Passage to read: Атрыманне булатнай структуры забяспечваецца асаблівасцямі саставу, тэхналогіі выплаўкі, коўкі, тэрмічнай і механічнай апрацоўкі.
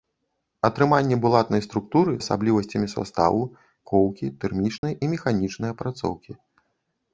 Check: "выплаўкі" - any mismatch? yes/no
yes